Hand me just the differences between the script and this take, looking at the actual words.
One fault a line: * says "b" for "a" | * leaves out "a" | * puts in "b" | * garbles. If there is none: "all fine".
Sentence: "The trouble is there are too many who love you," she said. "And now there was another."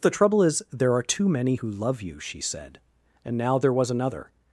all fine